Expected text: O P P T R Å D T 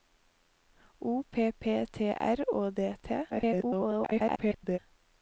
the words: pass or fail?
fail